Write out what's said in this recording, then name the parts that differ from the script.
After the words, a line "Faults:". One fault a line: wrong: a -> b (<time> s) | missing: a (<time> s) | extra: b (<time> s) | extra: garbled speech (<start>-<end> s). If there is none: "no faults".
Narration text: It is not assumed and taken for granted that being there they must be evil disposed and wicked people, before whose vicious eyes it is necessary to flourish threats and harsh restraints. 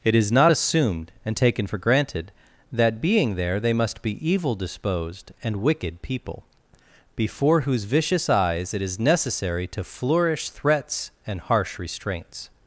It is not assumed and taken for granted that being there they must be evil disposed and wicked people, before whose vicious eyes it is necessary to flourish threats and harsh restraints.
Faults:
no faults